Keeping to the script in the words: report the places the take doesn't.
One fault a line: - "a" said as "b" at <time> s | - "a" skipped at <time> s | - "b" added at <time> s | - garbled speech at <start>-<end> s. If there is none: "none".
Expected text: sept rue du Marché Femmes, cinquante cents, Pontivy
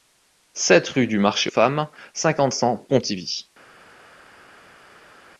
none